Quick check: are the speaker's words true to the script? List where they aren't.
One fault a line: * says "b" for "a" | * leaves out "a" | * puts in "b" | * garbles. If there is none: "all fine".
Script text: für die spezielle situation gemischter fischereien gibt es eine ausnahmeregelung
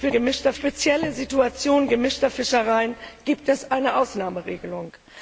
* says "gemischter" for "die"